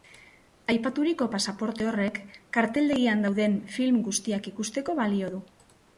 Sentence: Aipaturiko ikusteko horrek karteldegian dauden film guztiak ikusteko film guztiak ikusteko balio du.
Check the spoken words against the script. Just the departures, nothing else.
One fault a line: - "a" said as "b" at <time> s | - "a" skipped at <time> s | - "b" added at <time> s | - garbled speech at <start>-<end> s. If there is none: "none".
- "ikusteko" said as "pasaporte" at 1.4 s
- "film guztiak ikusteko" skipped at 5.0 s